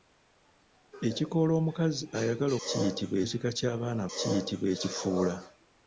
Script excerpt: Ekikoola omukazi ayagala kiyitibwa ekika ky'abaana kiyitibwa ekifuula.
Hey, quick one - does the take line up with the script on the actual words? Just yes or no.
yes